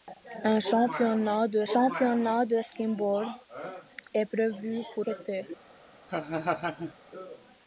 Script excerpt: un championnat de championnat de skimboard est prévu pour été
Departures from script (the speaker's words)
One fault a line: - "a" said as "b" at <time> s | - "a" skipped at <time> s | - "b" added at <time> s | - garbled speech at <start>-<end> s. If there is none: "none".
none